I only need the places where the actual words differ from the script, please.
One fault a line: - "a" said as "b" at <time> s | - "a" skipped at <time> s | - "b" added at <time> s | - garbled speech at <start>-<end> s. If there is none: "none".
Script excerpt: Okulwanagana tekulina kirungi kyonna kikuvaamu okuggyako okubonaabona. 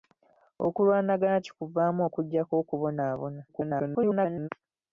- "tekulina kirungi kyonna" skipped at 1.4 s
- garbled speech at 3.5-4.5 s